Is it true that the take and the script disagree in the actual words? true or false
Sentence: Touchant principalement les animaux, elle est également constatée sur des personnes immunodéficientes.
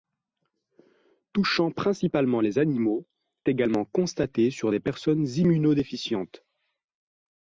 true